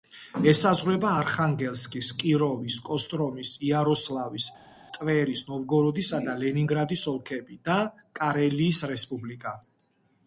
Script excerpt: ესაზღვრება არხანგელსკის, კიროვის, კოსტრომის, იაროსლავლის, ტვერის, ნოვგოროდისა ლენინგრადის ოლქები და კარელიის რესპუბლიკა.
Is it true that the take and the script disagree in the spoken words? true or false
true